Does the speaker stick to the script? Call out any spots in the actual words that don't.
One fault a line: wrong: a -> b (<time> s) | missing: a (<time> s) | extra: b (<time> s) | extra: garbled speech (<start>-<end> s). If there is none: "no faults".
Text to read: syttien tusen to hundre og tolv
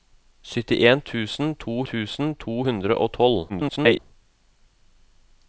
extra: tusen to (1.9 s)
extra: garbled speech (3.5-4.0 s)